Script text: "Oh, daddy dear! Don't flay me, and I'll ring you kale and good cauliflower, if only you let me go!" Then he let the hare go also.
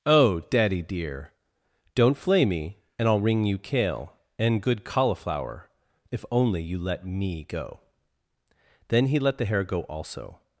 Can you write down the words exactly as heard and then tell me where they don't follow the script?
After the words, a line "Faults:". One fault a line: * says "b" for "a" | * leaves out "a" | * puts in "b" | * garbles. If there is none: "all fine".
"Oh, daddy dear! Don't flay me, and I'll ring you kale and good cauliflower, if only you let me go!" Then he let the hare go also.
Faults:
all fine